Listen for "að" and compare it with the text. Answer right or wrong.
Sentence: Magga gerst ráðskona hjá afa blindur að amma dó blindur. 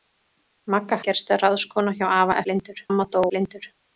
right